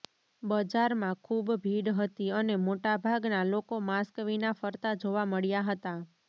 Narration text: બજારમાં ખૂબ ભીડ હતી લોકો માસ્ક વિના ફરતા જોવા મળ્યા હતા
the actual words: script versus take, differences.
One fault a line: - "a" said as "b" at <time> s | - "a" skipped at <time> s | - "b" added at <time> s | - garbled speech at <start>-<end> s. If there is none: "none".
- "અને મોટાભાગના" added at 2.3 s